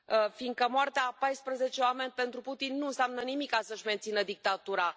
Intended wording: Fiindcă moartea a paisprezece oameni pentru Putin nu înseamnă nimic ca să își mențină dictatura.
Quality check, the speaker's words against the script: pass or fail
pass